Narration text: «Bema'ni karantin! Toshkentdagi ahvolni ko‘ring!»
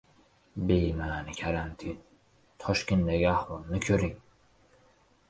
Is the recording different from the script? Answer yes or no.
no